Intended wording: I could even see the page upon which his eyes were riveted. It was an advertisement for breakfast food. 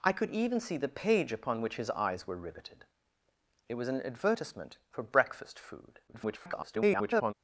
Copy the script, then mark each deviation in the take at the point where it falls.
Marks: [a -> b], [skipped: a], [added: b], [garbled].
I could even see the page upon which his eyes were riveted. It was an advertisement for breakfast food. [garbled]